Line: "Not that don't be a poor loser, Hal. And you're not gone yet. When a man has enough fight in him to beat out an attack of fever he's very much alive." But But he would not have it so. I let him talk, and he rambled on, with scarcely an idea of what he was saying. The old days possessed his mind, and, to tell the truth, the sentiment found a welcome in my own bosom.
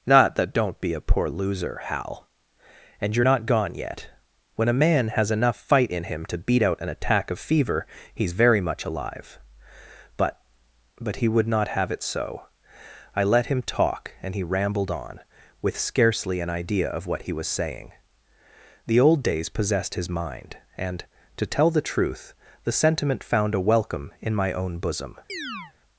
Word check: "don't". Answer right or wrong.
right